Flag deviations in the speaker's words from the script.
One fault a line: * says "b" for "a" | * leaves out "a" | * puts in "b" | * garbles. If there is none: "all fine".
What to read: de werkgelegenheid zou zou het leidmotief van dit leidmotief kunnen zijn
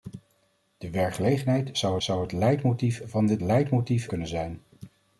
all fine